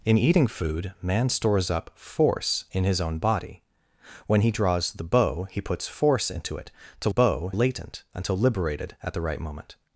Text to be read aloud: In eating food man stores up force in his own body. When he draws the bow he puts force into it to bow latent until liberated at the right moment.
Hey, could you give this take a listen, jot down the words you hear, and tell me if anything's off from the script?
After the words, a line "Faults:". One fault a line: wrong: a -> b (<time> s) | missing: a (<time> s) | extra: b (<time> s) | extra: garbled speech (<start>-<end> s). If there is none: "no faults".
In eating food man stores up force in his own body. When he draws the bow he puts force into it to bow latent until liberated at the right moment.
Faults:
no faults